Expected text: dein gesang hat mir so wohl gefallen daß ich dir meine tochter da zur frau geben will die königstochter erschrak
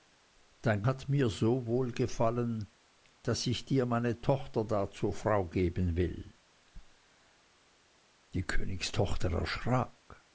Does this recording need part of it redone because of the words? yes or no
yes